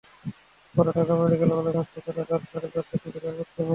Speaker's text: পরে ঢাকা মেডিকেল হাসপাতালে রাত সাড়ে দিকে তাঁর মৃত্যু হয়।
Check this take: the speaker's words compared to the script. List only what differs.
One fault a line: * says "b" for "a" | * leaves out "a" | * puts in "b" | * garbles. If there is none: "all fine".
* puts in "কলেজ"
* puts in "চারটার"